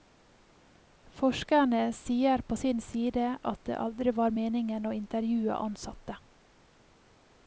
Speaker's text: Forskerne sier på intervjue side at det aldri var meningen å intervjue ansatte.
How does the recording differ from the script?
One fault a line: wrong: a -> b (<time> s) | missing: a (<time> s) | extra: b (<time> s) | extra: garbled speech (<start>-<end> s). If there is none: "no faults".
wrong: intervjue -> sin (2.6 s)